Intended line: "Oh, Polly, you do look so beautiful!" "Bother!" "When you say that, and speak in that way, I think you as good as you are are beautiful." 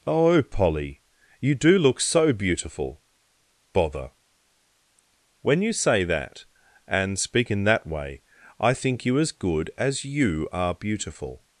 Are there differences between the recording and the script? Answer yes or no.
yes